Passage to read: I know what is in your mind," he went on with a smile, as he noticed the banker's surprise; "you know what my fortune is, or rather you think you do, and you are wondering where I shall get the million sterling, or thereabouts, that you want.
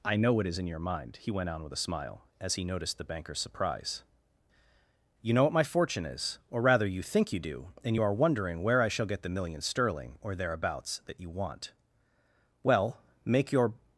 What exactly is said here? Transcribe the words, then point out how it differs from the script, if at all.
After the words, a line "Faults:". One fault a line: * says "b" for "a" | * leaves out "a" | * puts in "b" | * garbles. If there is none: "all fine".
I know what is in your mind," he went on with a smile, as he noticed the banker's surprise; "you know what my fortune is, or rather you think you do, and you are wondering where I shall get the million sterling, or thereabouts, that you want. Well, make your
Faults:
* puts in "Well make your"